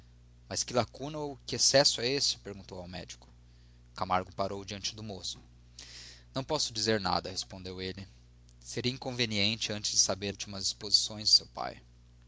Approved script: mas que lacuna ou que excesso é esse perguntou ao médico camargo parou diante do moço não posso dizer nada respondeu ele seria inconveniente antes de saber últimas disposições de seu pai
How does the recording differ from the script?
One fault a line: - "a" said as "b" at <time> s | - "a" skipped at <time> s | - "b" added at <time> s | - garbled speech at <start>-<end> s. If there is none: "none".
none